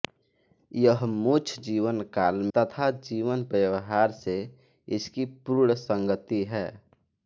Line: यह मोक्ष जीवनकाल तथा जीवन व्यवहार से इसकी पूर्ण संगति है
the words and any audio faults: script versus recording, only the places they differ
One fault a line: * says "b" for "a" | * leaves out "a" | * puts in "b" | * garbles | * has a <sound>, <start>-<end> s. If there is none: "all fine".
all fine